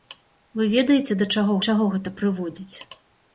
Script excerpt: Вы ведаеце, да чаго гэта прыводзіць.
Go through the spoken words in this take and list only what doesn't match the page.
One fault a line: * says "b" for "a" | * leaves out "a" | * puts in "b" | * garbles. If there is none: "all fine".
* puts in "чаго"